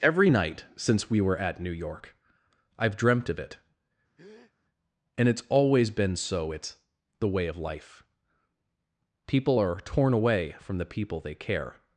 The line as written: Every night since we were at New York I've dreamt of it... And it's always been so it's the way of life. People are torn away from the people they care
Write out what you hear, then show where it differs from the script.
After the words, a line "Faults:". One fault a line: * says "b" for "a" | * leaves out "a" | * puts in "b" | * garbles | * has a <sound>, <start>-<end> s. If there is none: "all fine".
Every night since we were at New York I've dreamt of it... And it's always been so it's the way of life. People are torn away from the people they care
Faults:
* has a breath, 4.2-4.5 s